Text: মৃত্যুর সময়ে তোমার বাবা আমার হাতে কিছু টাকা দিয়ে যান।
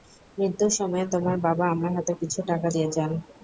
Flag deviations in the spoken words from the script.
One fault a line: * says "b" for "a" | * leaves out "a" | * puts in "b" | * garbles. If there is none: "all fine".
all fine